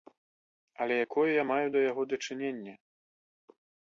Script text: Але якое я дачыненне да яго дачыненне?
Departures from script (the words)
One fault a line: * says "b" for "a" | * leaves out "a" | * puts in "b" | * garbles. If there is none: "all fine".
* says "маю" for "дачыненне"